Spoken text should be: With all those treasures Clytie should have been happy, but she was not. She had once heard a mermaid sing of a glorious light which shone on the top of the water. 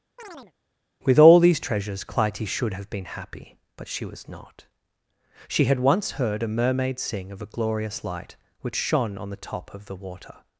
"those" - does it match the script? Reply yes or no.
no